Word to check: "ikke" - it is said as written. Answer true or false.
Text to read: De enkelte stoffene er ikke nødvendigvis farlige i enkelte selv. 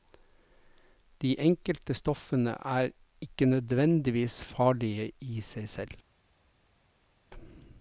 true